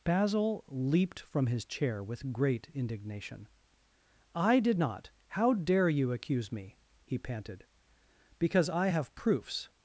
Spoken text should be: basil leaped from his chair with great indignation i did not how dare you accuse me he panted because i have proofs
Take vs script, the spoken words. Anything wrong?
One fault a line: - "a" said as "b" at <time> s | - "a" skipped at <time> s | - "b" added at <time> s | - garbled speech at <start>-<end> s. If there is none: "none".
none